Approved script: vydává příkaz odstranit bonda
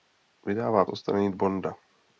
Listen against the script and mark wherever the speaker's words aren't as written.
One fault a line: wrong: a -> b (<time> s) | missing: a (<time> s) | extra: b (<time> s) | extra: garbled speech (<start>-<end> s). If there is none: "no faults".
missing: příkaz (0.8 s)